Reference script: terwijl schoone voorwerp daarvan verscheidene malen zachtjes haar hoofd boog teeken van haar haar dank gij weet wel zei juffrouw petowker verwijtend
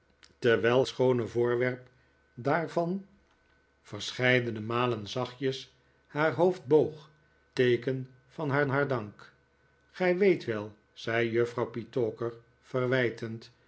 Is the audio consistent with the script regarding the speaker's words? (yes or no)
yes